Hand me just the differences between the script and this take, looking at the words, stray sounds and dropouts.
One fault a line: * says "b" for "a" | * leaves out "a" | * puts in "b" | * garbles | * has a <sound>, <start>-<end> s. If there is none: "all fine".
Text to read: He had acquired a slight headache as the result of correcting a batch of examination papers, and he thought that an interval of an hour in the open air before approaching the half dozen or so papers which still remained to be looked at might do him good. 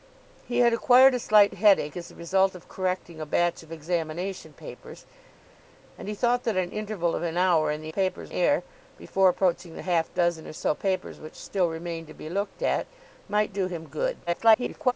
* says "papers" for "open"
* garbles